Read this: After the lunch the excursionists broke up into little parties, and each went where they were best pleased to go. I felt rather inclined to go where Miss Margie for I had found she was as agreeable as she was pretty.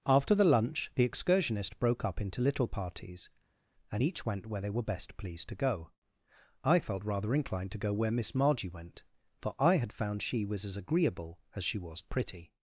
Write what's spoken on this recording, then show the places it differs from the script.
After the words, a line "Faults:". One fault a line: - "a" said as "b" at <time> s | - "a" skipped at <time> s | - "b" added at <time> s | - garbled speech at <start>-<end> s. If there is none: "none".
After the lunch the excursionists broke up into little parties, and each went where they were best pleased to go. I felt rather inclined to go where Miss Margie went, for I had found she was as agreeable as she was pretty.
Faults:
- "went" added at 8.7 s